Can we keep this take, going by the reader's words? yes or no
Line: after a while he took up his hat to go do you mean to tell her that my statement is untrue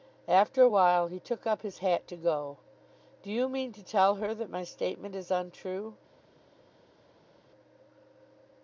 yes